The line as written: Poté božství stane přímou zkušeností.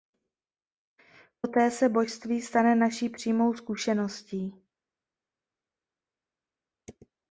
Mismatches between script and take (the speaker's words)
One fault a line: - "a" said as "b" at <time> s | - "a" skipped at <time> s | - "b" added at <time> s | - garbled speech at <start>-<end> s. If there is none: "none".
- "se" added at 1.7 s
- "naší" added at 2.8 s